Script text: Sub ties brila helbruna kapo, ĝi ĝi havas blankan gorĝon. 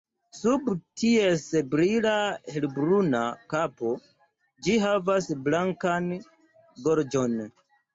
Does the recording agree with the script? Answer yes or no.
no